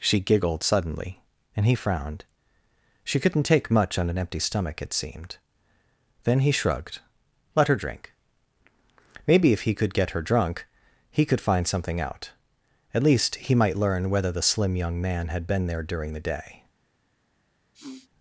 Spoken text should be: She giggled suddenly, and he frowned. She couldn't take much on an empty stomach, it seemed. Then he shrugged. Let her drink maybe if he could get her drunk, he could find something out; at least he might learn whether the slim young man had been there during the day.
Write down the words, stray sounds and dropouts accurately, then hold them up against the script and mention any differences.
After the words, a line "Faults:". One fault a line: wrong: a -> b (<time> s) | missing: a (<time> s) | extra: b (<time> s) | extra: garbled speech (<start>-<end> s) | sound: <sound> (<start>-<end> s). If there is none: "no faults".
She giggled suddenly, and he frowned. She couldn't take much on an empty stomach, it seemed. Then he shrugged. Let her drink maybe if he could get her drunk, he could find something out; at least he might learn whether the slim young man had been there during the day.
Faults:
sound: sniff (17.7-18.1 s)